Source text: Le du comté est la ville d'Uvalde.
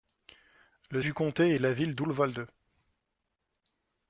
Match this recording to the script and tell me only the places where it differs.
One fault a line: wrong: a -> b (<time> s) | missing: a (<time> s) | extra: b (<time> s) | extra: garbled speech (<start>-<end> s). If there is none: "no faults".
no faults